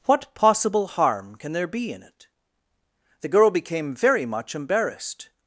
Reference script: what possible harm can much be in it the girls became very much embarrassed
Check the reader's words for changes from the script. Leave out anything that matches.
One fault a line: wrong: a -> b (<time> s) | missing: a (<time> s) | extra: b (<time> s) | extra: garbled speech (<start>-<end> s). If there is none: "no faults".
wrong: much -> there (1.5 s)
wrong: girls -> girl (3.3 s)